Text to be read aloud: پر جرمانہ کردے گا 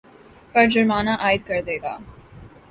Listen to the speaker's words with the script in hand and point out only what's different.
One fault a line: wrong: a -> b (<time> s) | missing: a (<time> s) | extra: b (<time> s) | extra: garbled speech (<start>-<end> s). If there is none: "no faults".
extra: عاید (1.2 s)